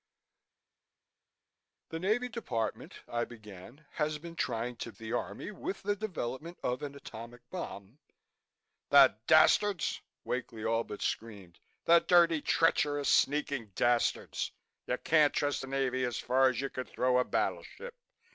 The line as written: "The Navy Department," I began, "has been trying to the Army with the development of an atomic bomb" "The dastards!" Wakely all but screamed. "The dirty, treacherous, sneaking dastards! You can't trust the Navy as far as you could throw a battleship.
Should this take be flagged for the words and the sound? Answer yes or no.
no